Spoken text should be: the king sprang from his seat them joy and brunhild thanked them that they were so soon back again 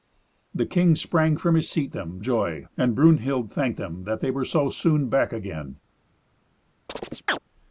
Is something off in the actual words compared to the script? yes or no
no